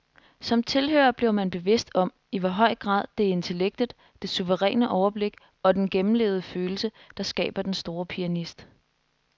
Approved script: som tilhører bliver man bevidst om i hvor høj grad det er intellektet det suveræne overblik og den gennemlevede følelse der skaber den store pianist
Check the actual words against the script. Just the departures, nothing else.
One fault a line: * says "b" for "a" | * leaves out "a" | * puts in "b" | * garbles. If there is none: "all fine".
all fine